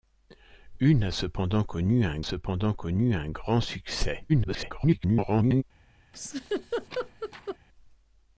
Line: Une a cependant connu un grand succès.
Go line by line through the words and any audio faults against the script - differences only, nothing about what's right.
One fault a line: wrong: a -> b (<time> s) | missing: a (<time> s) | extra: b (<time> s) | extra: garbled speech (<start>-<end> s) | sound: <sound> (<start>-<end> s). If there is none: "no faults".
extra: cependant connu un (2.2 s)
extra: garbled speech (4.3-5.6 s)
sound: laugh (6.1-7.6 s)